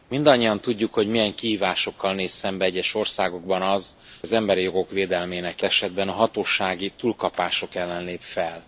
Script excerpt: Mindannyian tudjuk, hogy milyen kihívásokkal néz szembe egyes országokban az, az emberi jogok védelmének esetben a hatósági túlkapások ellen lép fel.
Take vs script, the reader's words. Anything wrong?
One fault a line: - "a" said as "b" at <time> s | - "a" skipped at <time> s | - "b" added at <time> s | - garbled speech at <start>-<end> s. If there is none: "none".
none